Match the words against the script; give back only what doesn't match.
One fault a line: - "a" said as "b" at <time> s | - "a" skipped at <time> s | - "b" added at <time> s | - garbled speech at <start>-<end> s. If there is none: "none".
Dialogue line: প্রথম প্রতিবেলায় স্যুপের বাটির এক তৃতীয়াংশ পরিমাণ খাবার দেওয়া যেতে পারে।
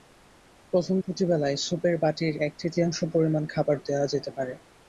none